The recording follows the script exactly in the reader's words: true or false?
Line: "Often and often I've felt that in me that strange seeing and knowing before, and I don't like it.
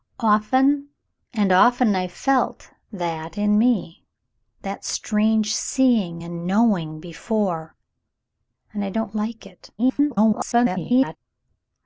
false